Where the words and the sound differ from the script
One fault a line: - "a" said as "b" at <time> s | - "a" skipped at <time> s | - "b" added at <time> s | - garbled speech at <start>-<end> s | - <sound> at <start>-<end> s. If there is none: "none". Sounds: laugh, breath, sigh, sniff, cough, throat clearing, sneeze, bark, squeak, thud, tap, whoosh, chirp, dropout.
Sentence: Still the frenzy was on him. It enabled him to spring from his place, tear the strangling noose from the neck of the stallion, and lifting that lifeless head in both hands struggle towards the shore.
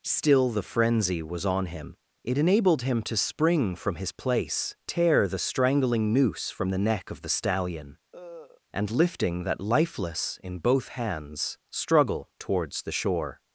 - cough at 8.1-8.6 s
- "head" skipped at 10.4 s